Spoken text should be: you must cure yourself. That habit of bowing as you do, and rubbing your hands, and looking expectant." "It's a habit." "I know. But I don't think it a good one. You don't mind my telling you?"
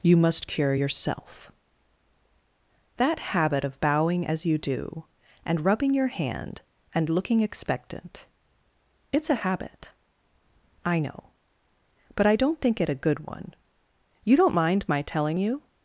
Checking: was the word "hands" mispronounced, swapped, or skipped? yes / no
yes